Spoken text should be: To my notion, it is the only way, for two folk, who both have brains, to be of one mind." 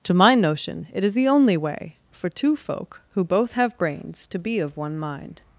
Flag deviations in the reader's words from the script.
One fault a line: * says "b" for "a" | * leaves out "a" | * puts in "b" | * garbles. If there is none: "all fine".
all fine